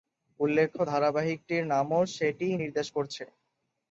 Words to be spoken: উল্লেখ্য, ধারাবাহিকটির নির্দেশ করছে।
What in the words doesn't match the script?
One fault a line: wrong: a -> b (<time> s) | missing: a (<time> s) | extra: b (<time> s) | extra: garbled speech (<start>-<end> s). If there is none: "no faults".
extra: নামও সেটিই (1.7 s)